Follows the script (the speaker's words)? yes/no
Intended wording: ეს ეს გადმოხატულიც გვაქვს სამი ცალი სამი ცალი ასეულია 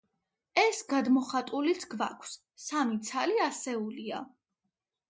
no